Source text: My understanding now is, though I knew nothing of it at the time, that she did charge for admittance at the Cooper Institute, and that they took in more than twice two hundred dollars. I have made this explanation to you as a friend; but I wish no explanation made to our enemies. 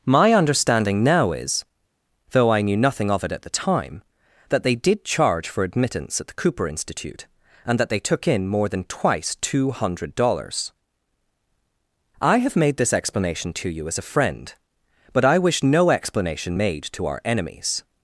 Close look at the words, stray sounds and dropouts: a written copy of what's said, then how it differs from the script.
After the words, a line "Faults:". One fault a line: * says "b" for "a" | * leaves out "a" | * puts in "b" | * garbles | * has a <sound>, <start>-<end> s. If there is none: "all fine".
My understanding now is, though I knew nothing of it at the time, that they did charge for admittance at the Cooper Institute, and that they took in more than twice two hundred dollars. I have made this explanation to you as a friend; but I wish no explanation made to our enemies.
Faults:
* says "they" for "she"